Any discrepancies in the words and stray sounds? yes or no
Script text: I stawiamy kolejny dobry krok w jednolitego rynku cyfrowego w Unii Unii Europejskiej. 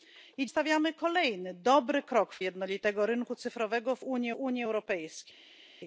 no